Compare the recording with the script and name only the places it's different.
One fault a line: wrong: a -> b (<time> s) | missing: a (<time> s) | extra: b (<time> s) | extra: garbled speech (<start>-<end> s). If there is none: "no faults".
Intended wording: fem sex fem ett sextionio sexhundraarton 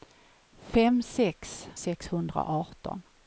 missing: fem ett sextionio (1.7 s)